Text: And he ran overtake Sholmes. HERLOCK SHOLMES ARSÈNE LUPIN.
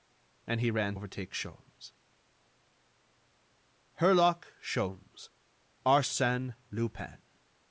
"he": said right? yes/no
yes